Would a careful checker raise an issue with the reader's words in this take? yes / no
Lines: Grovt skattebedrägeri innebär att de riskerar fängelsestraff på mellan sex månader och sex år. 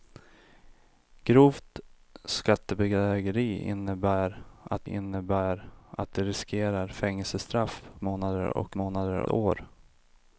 yes